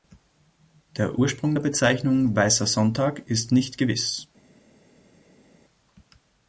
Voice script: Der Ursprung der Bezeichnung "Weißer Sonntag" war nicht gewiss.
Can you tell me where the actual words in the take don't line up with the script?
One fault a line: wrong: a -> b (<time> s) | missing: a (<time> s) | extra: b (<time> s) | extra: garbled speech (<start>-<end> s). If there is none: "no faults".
wrong: war -> ist (3.3 s)